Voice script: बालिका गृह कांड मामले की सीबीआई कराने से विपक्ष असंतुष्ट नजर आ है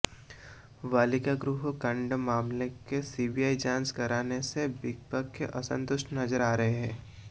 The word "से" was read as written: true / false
true